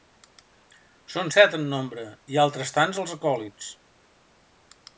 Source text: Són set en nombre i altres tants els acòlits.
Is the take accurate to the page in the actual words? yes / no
yes